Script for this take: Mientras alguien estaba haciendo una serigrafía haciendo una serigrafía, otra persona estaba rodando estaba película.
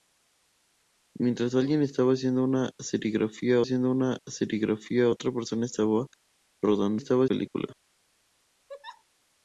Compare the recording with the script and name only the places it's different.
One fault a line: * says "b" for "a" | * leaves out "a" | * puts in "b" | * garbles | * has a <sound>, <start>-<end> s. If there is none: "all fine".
* has a laugh, 8.7-9.0 s